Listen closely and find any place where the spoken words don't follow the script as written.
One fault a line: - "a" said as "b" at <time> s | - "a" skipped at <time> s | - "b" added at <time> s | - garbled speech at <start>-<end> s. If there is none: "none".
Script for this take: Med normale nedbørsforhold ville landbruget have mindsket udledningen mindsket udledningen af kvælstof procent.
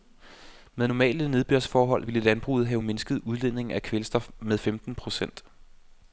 - "mindsket udledningen af kvælstof" said as "af kvælstof med femten" at 3.8 s